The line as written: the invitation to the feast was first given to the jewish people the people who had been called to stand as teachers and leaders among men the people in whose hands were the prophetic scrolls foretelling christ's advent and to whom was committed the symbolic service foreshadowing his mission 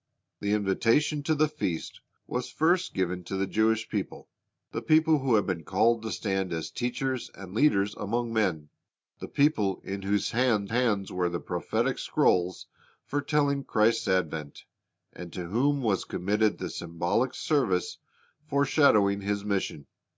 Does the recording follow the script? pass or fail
fail